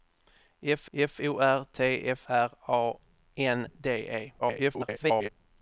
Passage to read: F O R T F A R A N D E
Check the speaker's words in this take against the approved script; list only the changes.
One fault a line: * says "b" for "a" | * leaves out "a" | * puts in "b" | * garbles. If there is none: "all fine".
* puts in "f"
* leaves out "A"
* garbles